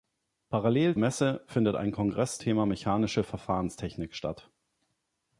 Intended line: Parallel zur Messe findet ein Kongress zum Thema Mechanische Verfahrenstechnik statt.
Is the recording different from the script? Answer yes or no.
yes